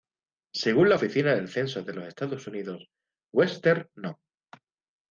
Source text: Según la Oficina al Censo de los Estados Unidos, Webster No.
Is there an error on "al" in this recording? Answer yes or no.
yes